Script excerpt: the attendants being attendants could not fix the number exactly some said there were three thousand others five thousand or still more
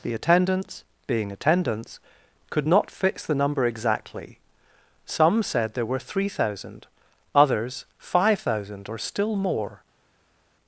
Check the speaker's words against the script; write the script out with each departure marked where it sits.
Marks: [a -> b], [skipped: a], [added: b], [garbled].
the attendants being attendants could not fix the number exactly some said there were three thousand others five thousand or still more